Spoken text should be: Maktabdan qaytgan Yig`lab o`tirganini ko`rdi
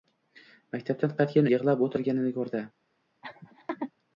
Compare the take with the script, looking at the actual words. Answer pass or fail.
pass